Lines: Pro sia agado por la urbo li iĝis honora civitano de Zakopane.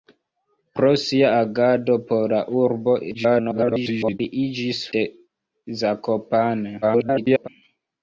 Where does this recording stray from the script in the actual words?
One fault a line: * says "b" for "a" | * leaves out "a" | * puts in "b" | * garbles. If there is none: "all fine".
* garbles
* leaves out "honora civitano"
* garbles